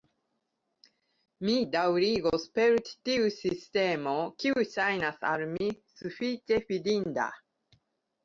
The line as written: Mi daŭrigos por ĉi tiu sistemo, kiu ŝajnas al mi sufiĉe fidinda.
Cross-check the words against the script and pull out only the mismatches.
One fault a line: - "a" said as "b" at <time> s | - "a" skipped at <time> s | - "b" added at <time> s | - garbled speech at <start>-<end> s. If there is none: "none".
- "por" said as "per" at 2.5 s